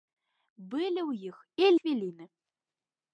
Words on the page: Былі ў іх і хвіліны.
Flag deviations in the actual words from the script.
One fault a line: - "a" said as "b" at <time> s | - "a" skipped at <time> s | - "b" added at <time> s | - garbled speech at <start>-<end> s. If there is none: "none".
none